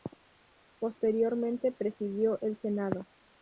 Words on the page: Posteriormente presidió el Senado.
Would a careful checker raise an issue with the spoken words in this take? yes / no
no